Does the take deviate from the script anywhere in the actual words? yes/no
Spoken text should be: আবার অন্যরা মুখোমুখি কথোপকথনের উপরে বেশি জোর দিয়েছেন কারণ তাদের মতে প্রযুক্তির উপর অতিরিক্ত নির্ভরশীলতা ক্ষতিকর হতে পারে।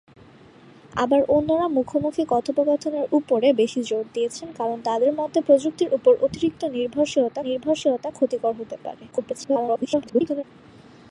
yes